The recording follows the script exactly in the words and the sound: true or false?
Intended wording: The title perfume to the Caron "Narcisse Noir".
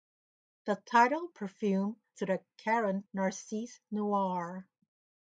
true